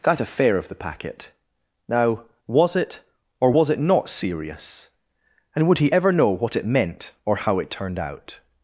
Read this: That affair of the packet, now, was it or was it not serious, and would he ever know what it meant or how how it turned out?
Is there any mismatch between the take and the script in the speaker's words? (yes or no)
yes